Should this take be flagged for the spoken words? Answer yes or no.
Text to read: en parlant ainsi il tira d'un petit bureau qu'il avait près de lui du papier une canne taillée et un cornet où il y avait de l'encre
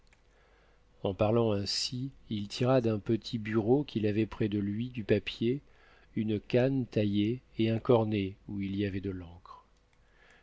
no